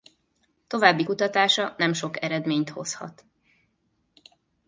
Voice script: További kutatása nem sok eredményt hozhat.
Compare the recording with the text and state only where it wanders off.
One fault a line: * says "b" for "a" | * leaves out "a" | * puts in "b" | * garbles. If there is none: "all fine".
all fine